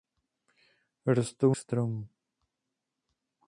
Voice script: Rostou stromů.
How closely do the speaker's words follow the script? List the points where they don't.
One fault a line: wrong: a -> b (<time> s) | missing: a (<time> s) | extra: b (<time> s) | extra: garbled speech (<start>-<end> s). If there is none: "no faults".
no faults